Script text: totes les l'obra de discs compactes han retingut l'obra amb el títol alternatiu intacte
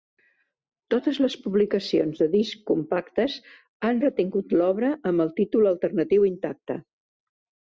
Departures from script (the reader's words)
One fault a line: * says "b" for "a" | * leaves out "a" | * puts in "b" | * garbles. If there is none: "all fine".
* says "publicacions" for "l'obra"